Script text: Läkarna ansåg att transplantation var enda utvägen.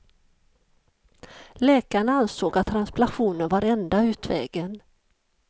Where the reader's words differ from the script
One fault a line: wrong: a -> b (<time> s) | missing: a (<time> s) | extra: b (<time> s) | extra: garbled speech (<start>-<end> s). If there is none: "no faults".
no faults